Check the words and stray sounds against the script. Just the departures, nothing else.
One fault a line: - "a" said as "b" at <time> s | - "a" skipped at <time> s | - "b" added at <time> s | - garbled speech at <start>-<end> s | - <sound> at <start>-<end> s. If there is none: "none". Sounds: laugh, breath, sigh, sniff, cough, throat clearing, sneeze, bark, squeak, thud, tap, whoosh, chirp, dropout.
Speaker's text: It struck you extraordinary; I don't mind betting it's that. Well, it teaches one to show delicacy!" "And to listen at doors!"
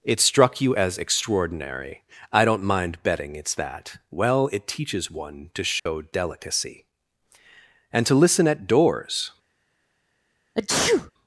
- "as" added at 0.7 s
- dropout at 5.8-5.9 s
- sneeze at 10.5-11.1 s